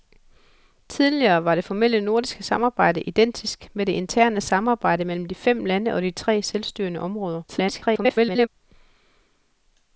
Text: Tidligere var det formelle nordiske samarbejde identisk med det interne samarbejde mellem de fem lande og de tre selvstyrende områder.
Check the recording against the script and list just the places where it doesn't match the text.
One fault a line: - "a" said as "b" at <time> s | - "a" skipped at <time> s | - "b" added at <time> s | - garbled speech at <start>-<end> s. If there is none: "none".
- garbled speech at 7.5-8.5 s